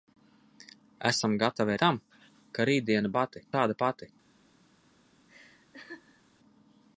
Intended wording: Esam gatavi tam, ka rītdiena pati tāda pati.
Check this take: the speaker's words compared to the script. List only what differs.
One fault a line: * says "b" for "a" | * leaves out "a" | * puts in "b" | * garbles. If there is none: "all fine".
all fine